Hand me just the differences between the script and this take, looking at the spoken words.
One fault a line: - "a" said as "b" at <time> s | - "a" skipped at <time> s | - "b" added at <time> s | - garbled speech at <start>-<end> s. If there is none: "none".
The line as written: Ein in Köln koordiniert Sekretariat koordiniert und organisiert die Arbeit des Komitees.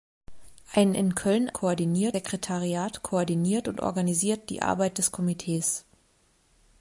none